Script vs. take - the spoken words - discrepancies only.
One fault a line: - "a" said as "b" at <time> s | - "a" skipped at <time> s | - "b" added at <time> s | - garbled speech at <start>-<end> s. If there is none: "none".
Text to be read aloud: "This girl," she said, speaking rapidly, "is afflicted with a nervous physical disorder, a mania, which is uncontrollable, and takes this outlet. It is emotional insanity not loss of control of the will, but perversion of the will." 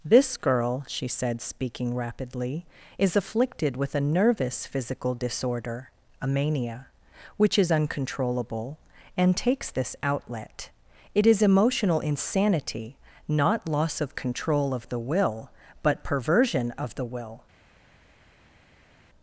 none